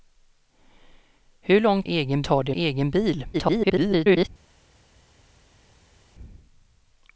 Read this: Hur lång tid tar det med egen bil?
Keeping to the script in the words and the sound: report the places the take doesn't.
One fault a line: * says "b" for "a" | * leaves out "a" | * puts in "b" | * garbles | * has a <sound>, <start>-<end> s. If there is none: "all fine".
* says "egen" for "tid"
* leaves out "med"
* garbles